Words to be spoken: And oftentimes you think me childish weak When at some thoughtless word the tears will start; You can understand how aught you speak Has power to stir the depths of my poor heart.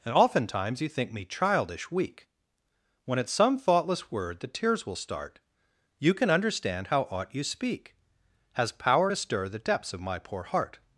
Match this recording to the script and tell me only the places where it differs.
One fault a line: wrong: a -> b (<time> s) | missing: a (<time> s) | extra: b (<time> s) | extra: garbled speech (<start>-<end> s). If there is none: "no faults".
no faults